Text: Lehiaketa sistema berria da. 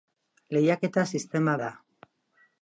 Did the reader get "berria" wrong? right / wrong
wrong